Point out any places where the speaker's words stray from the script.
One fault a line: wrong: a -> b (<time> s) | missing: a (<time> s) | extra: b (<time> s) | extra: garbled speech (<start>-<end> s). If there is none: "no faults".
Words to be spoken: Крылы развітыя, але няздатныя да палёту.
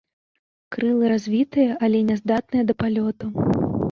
no faults